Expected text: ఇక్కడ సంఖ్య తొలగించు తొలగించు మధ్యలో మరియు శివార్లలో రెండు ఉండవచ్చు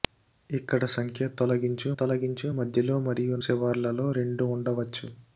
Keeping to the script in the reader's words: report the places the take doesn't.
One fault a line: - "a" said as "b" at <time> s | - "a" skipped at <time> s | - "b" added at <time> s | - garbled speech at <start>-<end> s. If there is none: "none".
none